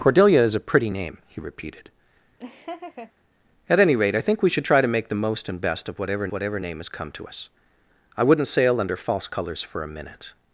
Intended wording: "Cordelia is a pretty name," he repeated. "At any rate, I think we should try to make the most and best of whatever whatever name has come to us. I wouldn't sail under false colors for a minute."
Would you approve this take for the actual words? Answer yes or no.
yes